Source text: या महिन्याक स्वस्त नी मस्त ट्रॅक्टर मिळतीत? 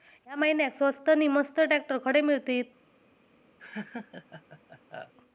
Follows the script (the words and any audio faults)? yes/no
no